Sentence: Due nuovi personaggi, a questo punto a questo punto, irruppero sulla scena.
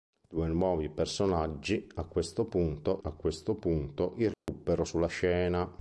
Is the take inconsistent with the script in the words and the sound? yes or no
yes